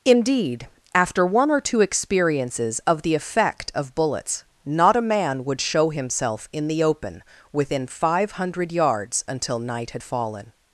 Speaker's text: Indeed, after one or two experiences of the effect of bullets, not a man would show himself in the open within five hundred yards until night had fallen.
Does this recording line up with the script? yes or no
yes